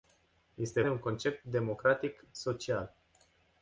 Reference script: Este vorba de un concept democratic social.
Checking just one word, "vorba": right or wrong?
wrong